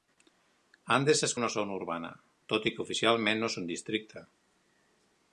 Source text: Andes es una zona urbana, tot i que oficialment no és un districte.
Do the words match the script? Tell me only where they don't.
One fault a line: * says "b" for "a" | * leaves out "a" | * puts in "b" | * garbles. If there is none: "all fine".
all fine